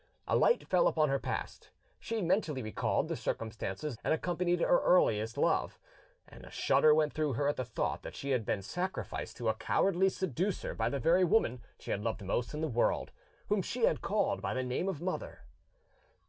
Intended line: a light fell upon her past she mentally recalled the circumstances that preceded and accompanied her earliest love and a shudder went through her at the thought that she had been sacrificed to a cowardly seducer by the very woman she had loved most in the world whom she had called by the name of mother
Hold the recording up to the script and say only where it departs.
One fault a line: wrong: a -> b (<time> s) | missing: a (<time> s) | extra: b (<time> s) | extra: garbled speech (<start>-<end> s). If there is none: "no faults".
missing: that preceded (4.0 s)